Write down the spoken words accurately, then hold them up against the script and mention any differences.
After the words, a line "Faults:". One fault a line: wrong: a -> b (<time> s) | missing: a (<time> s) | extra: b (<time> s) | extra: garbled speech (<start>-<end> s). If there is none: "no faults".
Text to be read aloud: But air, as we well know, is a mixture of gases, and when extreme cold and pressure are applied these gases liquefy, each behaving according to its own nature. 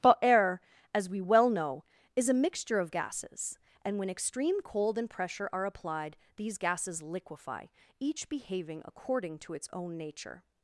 But air, as we well know, is a mixture of gases, and when extreme cold and pressure are applied these gases liquefy, each behaving according to its own nature.
Faults:
no faults